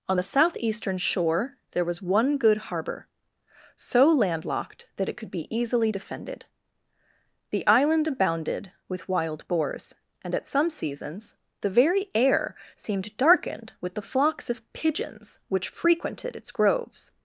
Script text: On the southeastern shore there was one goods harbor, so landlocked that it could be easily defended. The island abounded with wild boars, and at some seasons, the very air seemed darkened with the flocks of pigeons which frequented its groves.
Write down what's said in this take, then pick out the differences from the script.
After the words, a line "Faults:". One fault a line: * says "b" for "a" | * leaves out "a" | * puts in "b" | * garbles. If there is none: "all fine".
On the southeastern shore there was one good harbor, so landlocked that it could be easily defended. The island abounded with wild boars, and at some seasons, the very air seemed darkened with the flocks of pigeons which frequented its groves.
Faults:
* says "good" for "goods"